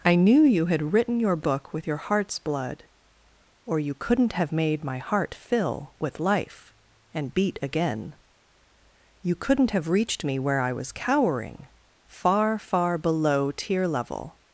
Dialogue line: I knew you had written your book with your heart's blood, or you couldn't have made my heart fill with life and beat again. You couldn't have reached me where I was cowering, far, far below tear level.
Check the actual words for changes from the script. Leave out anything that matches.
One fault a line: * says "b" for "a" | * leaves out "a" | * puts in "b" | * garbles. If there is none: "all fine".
all fine